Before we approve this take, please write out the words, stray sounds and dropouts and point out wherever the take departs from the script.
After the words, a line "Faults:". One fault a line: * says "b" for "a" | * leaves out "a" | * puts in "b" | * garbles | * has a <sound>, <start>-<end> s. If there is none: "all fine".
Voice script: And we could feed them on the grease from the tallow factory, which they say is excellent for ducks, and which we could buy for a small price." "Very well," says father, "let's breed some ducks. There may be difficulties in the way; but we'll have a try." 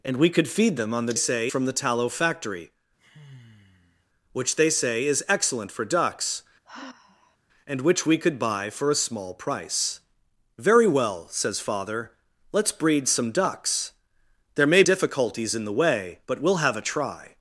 And we could feed them on the say from the tallow factory, which they say is excellent for ducks, and which we could buy for a small price." "Very well," says father, "let's breed some ducks. There may difficulties in the way; but we'll have a try."
Faults:
* says "say" for "grease"
* has a sigh, 3.0-4.1 s
* has a sigh, 6.6-7.4 s
* leaves out "be"